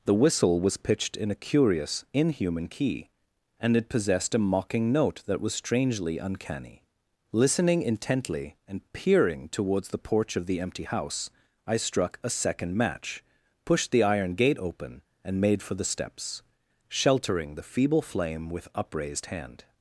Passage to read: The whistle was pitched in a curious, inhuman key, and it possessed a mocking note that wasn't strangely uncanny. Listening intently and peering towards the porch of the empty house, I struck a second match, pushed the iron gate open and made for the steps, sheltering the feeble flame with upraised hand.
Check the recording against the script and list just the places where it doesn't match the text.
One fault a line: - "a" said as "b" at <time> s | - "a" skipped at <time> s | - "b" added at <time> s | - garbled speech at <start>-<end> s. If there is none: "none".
- "wasn't" said as "was" at 5.4 s